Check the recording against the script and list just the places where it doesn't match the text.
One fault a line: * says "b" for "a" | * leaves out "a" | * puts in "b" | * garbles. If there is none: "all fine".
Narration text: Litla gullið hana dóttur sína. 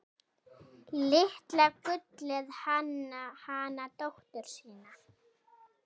all fine